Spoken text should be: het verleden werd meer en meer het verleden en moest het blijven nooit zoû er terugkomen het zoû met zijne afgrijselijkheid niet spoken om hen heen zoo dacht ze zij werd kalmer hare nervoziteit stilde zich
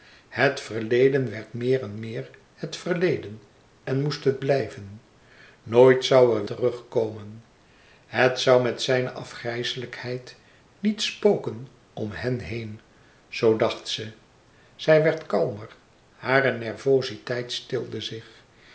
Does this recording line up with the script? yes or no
yes